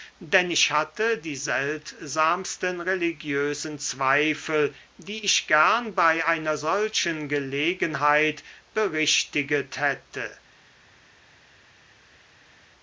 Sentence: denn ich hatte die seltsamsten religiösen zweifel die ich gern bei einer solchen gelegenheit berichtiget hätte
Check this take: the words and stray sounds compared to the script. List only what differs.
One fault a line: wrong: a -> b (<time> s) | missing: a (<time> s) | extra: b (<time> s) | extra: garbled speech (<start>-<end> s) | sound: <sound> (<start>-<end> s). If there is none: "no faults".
no faults